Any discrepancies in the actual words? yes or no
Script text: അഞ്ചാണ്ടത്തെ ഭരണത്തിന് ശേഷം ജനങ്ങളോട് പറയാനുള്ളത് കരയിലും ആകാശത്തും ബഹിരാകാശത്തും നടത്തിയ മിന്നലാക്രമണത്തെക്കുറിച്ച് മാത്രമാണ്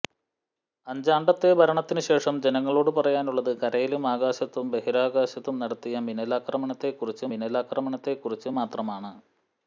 yes